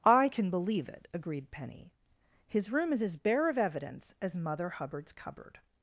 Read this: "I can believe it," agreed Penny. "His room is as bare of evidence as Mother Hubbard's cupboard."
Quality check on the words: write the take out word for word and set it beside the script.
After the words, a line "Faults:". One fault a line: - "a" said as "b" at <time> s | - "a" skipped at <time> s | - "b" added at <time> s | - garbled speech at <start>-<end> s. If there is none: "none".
"I can believe it," agreed Penny. "His room is as bare of evidence as Mother Hubbard's cupboard."
Faults:
none